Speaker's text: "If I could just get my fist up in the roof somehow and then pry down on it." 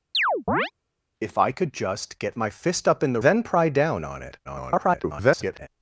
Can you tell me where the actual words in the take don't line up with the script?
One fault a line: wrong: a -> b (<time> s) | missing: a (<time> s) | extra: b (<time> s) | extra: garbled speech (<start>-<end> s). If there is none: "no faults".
missing: roof somehow and (3.2 s)
extra: garbled speech (4.4-5.7 s)